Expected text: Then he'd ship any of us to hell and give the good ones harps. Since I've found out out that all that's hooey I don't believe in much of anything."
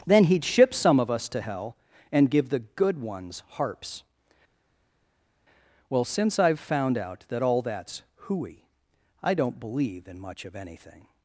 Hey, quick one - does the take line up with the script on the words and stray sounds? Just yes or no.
no